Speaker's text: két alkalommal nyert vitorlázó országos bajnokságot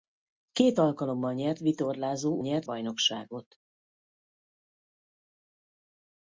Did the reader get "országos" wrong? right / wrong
wrong